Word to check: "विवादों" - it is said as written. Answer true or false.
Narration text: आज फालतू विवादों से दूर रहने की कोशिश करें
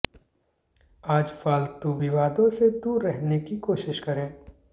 true